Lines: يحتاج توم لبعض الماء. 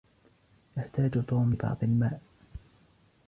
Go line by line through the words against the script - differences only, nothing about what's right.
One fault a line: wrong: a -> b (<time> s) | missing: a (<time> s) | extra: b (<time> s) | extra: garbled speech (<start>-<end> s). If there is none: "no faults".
no faults